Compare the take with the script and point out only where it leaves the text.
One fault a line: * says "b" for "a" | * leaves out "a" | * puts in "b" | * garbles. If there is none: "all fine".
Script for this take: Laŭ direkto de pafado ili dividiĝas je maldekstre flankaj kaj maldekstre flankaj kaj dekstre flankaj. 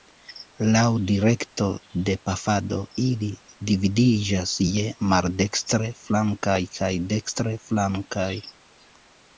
* leaves out "maldekstre flankaj kaj"